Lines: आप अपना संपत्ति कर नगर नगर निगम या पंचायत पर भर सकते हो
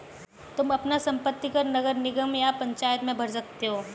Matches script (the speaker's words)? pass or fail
fail